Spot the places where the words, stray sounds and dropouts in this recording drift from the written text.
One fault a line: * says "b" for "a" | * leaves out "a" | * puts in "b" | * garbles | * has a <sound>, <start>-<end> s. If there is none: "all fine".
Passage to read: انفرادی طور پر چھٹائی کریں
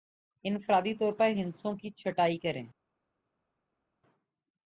* puts in "ہندسوں کی"